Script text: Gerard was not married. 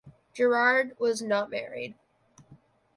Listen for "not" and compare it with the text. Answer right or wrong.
right